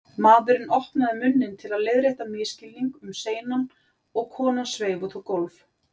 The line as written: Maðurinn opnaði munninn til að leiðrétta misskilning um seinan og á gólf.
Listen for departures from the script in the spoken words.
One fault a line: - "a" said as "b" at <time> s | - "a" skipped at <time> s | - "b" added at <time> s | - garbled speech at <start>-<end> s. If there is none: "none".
- "konan sveif út" added at 4.4 s